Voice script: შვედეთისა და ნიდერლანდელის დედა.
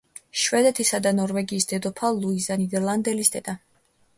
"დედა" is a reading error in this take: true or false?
false